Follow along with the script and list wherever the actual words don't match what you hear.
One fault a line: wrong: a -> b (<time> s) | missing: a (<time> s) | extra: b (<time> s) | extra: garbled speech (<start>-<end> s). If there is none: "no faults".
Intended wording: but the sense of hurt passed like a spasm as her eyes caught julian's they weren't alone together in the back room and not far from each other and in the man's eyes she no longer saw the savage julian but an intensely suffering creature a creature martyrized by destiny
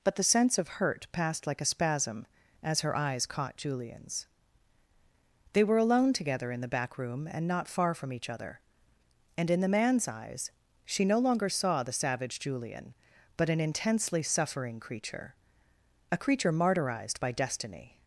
wrong: weren't -> were (5.6 s)